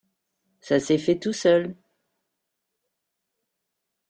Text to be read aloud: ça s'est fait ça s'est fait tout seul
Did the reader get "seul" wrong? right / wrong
right